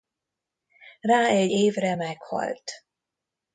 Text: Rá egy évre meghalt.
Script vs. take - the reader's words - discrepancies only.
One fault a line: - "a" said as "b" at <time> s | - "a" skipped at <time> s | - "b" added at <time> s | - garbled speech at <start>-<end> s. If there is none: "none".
none